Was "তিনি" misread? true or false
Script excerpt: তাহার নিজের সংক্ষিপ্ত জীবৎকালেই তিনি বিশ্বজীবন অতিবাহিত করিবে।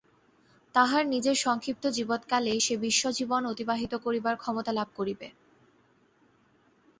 true